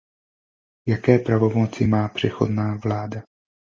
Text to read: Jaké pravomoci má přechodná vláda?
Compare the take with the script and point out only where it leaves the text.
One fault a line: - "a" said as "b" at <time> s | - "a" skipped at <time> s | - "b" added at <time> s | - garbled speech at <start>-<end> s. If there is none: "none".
none